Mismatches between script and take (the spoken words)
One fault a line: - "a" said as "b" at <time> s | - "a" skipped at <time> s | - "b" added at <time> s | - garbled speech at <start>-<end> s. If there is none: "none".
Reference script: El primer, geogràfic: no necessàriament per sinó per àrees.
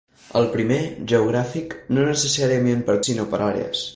none